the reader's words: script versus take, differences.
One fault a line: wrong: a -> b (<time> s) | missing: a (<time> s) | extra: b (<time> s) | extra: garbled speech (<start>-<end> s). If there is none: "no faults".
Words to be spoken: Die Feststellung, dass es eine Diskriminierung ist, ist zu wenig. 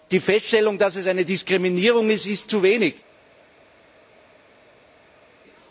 no faults